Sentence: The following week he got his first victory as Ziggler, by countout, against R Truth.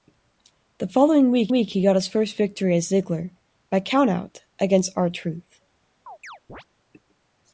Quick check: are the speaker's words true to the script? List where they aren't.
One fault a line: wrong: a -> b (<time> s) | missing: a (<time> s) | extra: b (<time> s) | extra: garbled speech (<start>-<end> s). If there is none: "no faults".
extra: week (1.5 s)